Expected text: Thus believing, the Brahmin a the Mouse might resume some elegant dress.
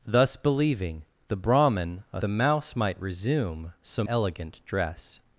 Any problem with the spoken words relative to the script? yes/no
no